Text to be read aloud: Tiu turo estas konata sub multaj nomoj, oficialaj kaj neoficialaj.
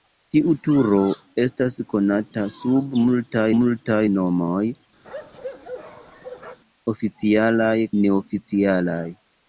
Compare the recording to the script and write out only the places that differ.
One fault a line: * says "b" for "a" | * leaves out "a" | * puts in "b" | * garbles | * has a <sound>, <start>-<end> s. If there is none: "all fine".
* puts in "multaj"
* has a bark, 5.0-6.6 s
* leaves out "kaj"